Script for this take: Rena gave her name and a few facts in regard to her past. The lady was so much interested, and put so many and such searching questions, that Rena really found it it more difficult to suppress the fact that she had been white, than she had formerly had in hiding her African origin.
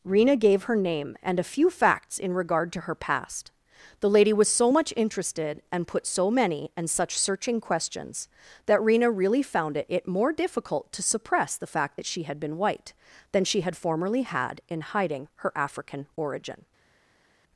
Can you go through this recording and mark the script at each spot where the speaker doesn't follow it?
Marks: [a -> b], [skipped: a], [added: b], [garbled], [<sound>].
Rena gave her name and a few facts in regard to her past. The lady was so much interested, and put so many and such searching questions, that Rena really found it it more difficult to suppress the fact that she had been white, than she had formerly had in hiding her African origin.